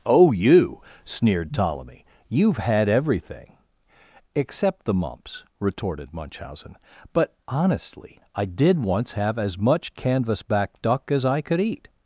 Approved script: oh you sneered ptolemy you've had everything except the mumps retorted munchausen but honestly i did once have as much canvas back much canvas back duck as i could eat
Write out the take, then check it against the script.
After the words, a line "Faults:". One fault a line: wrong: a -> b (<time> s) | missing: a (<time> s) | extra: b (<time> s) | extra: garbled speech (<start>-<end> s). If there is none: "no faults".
oh you sneered ptolemy you've had everything except the mumps retorted munchausen but honestly i did once have as much canvas back duck as i could eat
Faults:
missing: much canvas back (10.8 s)